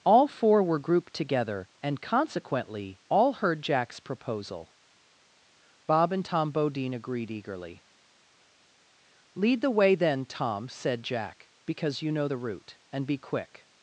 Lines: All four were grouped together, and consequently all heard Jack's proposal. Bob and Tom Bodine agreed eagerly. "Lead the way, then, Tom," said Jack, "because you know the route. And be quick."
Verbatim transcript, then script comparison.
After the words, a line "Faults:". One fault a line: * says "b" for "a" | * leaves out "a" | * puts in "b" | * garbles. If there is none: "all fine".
All four were grouped together, and consequently all heard Jack's proposal. Bob and Tom Bodine agreed eagerly. "Lead the way, then, Tom," said Jack, "because you know the route. And be quick."
Faults:
all fine